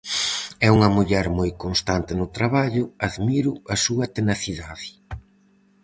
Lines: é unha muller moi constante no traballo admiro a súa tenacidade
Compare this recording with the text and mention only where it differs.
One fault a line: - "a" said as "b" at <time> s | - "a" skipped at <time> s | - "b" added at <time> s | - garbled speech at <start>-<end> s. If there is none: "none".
none